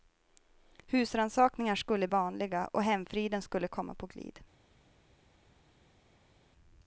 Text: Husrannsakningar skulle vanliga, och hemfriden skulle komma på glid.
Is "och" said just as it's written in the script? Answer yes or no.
yes